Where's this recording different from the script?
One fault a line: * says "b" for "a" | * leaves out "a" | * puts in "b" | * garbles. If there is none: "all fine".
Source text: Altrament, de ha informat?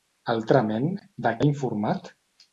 all fine